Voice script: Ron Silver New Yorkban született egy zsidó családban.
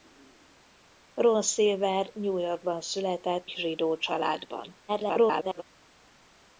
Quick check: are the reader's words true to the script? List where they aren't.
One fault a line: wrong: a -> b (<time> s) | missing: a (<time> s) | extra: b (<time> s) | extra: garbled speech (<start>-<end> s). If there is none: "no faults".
missing: egy (3.5 s)
extra: garbled speech (4.9-5.6 s)